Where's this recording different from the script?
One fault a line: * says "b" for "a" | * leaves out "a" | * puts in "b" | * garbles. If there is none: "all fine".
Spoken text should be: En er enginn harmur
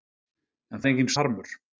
all fine